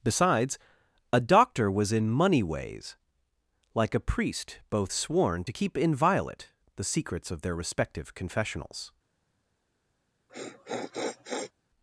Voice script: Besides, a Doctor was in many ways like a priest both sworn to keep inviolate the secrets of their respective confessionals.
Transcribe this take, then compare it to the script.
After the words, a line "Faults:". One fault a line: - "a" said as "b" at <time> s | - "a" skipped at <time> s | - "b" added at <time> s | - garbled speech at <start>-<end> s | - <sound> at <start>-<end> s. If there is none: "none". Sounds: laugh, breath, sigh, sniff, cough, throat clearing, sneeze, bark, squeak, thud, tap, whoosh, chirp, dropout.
Besides, a Doctor was in money ways like a priest both sworn to keep inviolate the secrets of their respective confessionals.
Faults:
- "many" said as "money" at 2.1 s
- sniff at 10.3-11.5 s